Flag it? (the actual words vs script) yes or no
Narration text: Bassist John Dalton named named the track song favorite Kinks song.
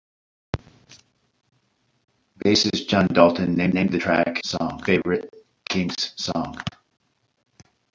no